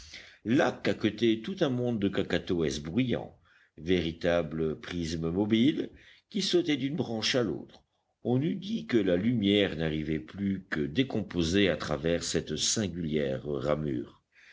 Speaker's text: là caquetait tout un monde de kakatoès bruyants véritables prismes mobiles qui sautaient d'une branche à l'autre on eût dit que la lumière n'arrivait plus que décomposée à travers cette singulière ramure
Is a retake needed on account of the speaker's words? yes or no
no